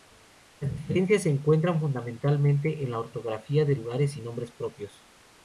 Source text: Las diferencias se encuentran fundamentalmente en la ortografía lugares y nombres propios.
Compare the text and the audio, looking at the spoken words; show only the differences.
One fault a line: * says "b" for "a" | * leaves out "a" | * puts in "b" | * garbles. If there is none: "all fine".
* puts in "de"